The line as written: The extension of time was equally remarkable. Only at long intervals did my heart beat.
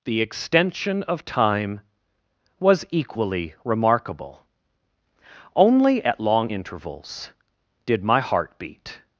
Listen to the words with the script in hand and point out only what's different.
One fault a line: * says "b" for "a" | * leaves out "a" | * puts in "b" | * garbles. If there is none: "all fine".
all fine